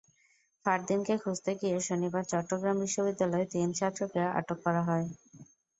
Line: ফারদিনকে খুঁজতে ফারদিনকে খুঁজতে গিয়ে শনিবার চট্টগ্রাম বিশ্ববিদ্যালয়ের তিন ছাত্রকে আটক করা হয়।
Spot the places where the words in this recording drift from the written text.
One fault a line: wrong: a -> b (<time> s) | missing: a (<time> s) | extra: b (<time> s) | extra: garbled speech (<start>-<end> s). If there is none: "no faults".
missing: ফারদিনকে খুঁজতে (1.5 s)